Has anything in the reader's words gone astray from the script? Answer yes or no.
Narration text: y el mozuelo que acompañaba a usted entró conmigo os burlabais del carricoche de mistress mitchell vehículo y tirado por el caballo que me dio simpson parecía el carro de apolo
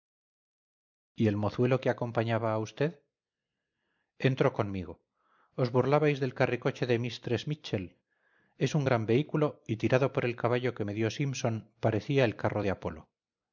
yes